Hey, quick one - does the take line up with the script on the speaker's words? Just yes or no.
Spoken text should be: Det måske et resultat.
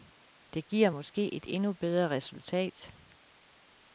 no